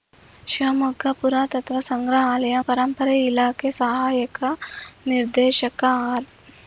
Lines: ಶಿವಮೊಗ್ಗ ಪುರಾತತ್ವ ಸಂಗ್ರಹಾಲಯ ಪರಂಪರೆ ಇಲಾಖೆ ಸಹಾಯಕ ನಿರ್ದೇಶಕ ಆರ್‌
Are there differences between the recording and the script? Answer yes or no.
no